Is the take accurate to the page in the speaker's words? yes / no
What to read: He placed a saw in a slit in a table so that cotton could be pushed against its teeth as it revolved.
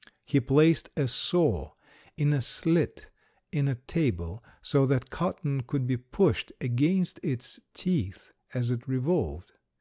yes